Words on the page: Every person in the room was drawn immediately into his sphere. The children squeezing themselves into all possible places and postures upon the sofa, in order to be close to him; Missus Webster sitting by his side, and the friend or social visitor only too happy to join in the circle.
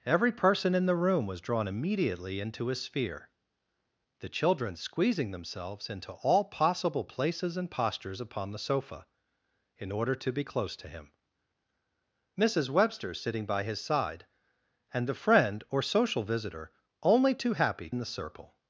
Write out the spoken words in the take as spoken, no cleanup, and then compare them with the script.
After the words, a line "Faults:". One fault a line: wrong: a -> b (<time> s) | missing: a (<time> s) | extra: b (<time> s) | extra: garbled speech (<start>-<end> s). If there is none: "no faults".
Every person in the room was drawn immediately into his sphere. The children squeezing themselves into all possible places and postures upon the sofa, in order to be close to him; Missus Webster sitting by his side, and the friend or social visitor only too happy in the circle.
Faults:
missing: to join (17.9 s)